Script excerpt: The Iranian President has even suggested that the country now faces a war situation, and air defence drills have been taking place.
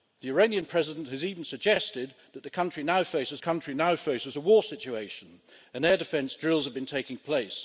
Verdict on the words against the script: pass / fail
fail